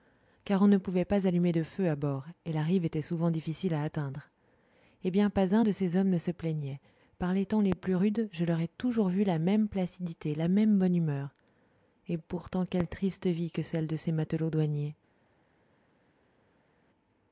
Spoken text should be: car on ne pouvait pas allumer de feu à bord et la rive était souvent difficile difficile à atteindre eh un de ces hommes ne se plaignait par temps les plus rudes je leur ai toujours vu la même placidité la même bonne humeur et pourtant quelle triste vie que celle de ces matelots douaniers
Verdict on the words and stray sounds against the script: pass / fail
fail